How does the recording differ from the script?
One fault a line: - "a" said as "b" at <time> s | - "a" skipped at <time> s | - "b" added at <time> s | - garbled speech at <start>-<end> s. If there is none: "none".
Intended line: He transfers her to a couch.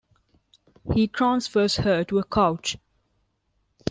none